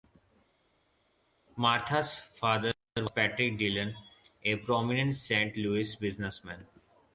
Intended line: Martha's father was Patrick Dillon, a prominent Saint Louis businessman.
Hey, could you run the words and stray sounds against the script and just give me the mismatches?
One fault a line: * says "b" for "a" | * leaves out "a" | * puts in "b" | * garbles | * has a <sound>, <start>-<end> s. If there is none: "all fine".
all fine